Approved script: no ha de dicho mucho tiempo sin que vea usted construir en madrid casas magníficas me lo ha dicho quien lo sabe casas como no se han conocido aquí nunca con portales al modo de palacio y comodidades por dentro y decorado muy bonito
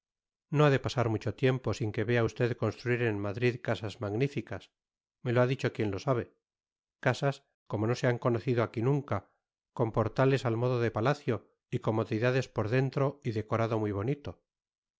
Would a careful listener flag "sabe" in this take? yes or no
no